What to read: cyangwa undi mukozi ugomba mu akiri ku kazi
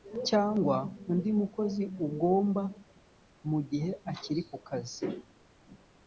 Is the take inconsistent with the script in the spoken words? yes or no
yes